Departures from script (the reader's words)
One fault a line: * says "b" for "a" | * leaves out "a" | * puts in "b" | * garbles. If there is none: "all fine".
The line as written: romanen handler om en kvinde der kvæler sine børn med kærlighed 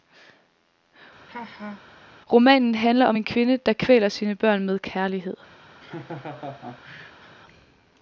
all fine